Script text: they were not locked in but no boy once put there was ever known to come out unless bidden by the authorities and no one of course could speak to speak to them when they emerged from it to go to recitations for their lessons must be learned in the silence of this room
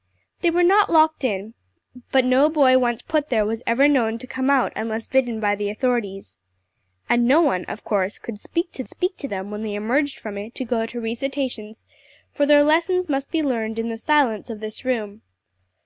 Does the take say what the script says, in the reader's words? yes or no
yes